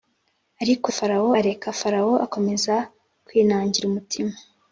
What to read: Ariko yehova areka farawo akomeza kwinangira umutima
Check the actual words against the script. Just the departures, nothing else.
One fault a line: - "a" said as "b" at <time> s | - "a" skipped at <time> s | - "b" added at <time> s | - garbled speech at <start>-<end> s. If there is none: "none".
- "yehova" said as "farawo" at 1.0 s